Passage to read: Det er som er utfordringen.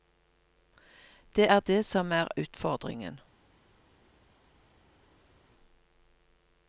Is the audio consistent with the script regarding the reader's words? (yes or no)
no